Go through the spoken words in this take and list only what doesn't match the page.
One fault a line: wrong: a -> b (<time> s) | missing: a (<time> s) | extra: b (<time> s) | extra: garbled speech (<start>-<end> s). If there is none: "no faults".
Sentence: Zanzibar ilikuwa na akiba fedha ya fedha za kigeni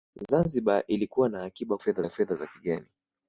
no faults